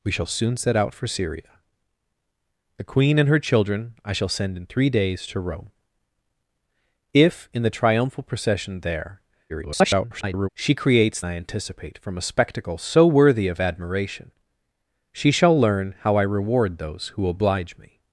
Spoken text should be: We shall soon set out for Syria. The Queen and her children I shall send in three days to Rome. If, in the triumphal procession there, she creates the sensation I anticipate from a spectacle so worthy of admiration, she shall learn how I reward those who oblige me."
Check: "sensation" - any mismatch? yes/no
yes